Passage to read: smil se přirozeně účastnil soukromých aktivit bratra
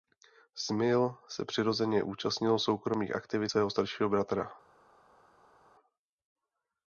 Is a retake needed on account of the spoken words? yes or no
yes